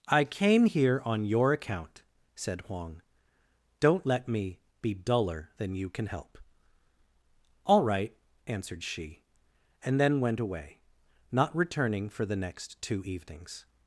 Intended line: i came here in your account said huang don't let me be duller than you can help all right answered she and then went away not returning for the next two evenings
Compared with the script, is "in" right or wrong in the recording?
wrong